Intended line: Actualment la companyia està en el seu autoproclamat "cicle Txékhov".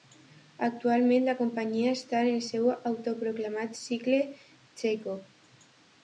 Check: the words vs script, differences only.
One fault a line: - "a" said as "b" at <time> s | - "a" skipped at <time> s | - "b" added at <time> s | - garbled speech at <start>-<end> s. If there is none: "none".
none